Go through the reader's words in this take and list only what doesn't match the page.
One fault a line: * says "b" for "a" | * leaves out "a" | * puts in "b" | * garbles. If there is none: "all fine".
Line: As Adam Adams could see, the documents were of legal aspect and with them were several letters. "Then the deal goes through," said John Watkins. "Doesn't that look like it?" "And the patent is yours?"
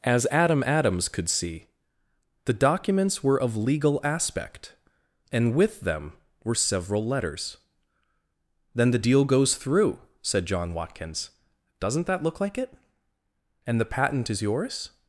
all fine